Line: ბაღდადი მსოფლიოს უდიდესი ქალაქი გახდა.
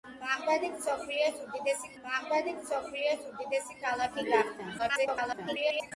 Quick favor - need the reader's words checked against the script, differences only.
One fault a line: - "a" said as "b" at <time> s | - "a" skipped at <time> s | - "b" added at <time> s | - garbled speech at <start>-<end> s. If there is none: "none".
- "ბაღდადი მსოფლიოს უდიდესი" added at 2.0 s
- garbled speech at 4.8-5.9 s